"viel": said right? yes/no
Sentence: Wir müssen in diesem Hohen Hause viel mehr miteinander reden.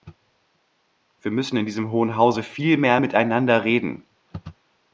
yes